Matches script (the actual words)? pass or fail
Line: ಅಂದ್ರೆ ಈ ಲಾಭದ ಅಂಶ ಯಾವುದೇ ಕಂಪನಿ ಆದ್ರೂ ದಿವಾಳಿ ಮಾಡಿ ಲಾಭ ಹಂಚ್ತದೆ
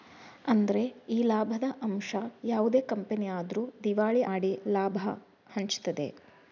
pass